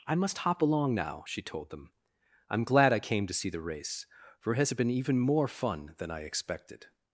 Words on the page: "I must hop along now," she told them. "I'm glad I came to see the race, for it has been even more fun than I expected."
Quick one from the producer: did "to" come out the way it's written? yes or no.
yes